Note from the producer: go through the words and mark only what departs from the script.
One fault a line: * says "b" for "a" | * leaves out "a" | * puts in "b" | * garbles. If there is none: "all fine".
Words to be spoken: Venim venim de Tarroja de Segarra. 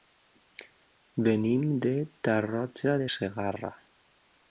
* leaves out "venim"